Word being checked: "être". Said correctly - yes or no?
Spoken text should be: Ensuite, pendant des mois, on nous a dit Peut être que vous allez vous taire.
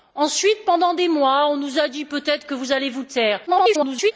yes